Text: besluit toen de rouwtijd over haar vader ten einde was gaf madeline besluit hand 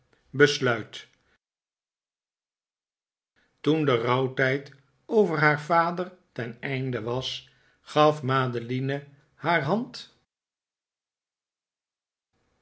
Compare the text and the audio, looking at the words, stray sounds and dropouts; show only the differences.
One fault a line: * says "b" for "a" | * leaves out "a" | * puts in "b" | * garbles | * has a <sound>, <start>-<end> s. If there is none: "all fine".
* says "haar" for "besluit"